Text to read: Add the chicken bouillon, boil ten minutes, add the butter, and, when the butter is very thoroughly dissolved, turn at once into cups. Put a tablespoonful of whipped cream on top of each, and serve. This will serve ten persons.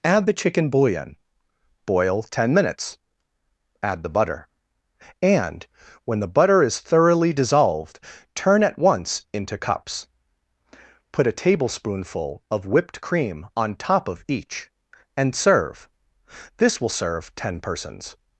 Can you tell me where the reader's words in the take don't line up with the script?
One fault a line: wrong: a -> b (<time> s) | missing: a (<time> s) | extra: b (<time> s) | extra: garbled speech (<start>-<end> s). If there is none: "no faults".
missing: very (6.8 s)